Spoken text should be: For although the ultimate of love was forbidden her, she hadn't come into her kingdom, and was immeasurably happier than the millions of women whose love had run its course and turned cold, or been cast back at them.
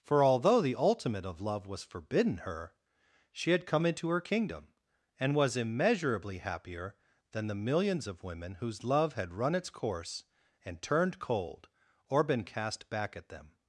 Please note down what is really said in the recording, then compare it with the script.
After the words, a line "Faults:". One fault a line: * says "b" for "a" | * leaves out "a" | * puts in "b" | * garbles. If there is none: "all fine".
For although the ultimate of love was forbidden her, she had come into her kingdom, and was immeasurably happier than the millions of women whose love had run its course and turned cold, or been cast back at them.
Faults:
* says "had" for "hadn't"